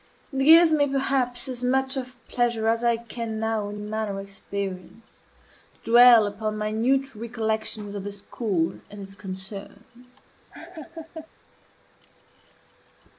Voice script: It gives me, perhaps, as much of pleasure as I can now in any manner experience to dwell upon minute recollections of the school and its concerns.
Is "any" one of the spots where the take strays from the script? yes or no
yes